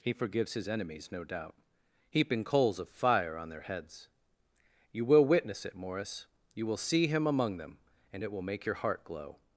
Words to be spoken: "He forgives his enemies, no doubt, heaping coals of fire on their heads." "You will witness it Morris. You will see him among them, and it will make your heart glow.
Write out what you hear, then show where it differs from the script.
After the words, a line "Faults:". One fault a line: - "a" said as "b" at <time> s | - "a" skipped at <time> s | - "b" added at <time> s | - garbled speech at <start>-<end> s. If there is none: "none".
"He forgives his enemies, no doubt, heaping coals of fire on their heads." "You will witness it Morris. You will see him among them, and it will make your heart glow.
Faults:
none